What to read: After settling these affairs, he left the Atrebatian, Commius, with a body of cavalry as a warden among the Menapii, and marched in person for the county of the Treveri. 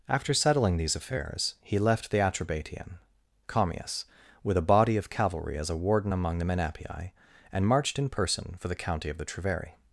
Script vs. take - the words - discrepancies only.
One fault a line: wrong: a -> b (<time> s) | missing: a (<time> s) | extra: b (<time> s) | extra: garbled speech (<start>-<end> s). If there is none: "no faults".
no faults